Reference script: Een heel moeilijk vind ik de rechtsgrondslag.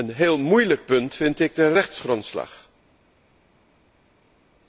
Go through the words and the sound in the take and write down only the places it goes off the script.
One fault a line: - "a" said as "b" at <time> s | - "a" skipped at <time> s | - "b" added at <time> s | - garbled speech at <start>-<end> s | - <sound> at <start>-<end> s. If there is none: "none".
- "punt" added at 0.8 s